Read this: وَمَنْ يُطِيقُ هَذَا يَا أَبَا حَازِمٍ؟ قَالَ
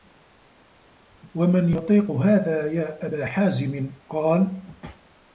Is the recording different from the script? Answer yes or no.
no